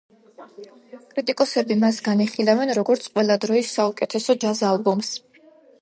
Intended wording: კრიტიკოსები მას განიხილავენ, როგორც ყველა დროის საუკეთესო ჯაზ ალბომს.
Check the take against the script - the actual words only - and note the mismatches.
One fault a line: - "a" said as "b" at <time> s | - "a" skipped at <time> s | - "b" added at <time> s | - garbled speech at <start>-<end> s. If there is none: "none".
none